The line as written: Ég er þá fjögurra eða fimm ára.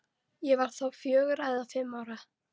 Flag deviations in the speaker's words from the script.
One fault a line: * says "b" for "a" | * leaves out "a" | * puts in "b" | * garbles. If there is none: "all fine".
* says "var" for "er"